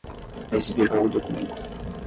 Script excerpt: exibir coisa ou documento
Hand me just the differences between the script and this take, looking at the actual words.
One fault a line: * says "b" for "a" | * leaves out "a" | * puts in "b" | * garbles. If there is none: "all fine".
* leaves out "coisa"